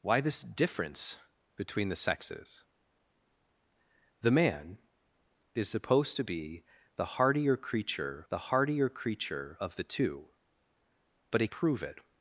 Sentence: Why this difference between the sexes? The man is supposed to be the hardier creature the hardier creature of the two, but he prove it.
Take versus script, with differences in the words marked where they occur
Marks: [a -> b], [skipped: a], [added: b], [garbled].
Why this difference between the sexes? The man is supposed to be the hardier creature the hardier creature of the two, but he prove it.